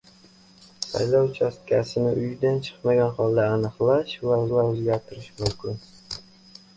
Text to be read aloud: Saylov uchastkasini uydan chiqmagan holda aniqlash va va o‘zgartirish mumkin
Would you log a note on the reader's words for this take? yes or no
no